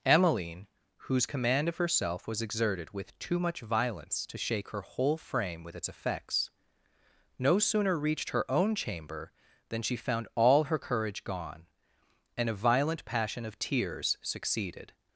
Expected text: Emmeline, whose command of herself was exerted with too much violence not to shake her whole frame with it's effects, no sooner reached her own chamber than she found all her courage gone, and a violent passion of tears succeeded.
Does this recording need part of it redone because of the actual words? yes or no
yes